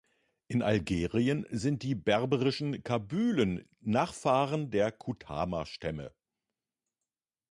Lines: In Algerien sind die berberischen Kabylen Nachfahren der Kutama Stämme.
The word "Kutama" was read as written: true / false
true